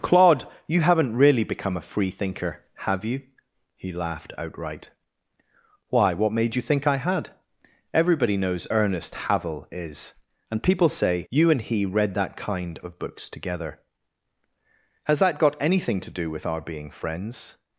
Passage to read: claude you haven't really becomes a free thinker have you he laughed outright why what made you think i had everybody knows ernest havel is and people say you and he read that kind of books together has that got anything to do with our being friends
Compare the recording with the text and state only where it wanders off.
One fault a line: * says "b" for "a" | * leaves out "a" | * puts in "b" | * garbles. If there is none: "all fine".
* says "become" for "becomes"